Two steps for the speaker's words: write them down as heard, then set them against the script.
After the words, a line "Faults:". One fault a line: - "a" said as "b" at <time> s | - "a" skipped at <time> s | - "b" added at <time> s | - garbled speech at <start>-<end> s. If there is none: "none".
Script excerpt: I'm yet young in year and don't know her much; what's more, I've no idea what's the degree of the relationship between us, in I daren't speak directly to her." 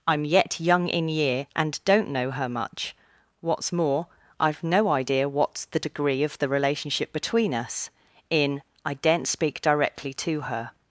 I'm yet young in year and don't know her much; what's more, I've no idea what's the degree of the relationship between us, in I daren't speak directly to her."
Faults:
none